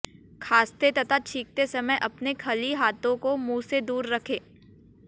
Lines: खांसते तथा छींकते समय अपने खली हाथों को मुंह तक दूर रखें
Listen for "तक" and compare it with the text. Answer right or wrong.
wrong